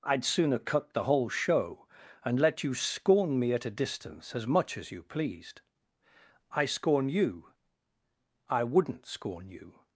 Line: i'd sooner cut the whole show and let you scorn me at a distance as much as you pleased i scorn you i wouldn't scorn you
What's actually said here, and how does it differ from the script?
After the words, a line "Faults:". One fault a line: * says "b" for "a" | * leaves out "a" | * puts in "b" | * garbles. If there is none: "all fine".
i'd sooner cut the whole show and let you scorn me at a distance as much as you pleased i scorn you i wouldn't scorn you
Faults:
all fine